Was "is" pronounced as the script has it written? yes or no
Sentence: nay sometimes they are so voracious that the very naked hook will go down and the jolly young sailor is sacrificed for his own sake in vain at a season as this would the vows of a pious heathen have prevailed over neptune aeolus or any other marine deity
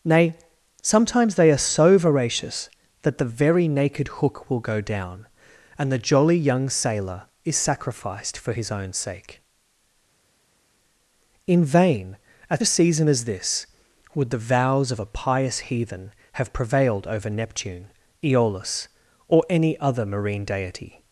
yes